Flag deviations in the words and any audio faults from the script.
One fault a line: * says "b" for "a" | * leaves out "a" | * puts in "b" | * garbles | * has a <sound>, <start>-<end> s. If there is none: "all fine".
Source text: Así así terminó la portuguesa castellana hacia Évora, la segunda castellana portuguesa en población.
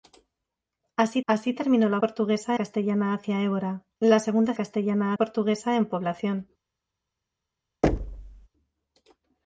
* has a thud, 7.8-8.5 s